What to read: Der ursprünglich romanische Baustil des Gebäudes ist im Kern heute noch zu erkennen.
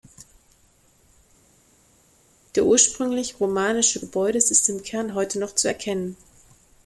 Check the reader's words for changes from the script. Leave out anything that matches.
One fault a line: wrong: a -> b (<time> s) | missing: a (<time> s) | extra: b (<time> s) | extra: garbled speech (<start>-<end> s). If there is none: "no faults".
missing: Baustil des (4.0 s)